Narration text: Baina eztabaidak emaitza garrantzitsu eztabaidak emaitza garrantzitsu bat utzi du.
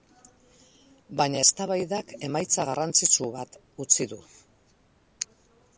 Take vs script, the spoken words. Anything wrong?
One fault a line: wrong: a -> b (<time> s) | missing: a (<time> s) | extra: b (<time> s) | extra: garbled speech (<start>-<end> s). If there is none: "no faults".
missing: eztabaidak emaitza garrantzitsu (3.3 s)